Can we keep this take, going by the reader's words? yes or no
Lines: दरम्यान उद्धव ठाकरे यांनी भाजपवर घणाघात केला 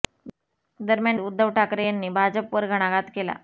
yes